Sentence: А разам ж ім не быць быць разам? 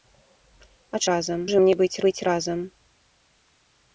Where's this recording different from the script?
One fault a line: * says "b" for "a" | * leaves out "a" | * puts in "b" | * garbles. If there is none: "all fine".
all fine